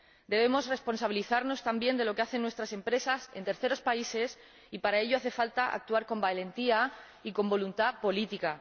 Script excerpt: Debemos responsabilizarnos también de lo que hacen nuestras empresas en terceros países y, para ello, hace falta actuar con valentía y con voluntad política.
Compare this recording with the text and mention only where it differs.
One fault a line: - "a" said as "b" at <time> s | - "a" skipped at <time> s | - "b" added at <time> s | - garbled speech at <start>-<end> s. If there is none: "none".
none